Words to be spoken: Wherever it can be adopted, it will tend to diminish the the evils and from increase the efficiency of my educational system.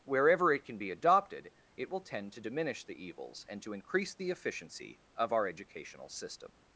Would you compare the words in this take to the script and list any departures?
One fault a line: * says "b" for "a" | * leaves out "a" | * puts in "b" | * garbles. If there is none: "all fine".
* leaves out "the"
* says "to" for "from"
* says "our" for "my"